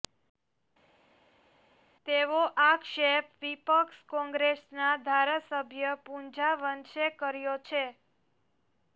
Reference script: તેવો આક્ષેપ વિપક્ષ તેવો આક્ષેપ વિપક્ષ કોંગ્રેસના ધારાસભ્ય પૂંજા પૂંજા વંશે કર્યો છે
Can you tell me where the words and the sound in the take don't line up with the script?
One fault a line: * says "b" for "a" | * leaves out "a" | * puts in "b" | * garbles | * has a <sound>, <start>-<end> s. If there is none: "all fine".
* leaves out "તેવો આક્ષેપ વિપક્ષ"
* leaves out "પૂંજા"